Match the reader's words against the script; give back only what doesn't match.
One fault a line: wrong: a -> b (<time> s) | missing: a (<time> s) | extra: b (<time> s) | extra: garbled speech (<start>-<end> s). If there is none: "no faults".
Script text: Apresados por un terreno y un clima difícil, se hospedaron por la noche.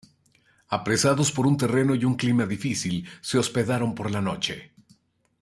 no faults